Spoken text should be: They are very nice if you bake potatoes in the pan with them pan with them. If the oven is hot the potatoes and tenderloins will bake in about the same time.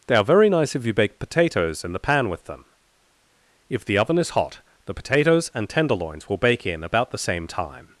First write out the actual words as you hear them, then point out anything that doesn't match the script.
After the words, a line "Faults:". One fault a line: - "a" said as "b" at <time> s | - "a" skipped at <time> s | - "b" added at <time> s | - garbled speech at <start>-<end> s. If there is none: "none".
They are very nice if you bake potatoes in the pan with them. If the oven is hot the potatoes and tenderloins will bake in about the same time.
Faults:
- "pan with them" skipped at 2.6 s